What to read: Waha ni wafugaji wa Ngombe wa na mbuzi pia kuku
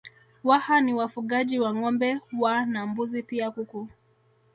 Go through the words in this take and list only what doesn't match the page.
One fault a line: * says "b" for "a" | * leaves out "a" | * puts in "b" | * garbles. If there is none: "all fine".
all fine